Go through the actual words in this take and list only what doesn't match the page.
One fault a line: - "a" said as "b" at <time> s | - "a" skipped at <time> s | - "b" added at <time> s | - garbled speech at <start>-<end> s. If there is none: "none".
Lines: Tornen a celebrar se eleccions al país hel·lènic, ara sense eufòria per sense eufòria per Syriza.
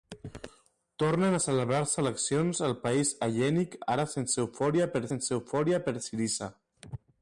none